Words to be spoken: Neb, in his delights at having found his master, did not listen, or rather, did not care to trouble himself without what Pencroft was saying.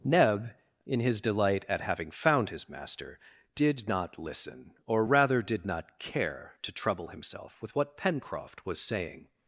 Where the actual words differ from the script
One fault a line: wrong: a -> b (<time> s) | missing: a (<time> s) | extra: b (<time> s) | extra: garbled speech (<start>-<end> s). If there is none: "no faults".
wrong: delights -> delight (1.2 s)
wrong: without -> with (7.6 s)